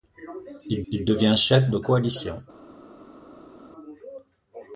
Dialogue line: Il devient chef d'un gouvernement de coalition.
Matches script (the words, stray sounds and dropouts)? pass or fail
fail